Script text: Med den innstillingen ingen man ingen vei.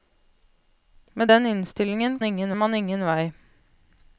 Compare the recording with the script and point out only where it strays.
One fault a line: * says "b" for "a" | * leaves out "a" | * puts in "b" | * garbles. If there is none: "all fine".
all fine